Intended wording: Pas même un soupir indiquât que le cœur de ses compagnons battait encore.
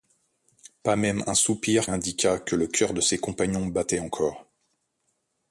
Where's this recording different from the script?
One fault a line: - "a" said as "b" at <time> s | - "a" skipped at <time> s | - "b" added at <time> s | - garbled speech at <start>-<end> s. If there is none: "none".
none